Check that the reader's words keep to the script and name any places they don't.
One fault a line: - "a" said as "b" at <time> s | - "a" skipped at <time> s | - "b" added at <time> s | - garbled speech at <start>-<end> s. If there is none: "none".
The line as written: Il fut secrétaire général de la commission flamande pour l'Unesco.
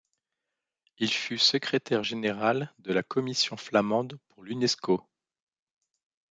none